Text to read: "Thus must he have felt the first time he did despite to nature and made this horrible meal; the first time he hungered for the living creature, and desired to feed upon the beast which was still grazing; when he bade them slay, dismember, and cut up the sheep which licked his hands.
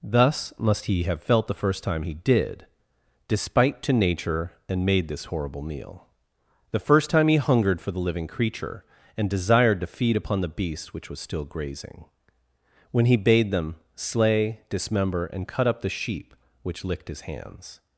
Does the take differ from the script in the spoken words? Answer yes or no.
no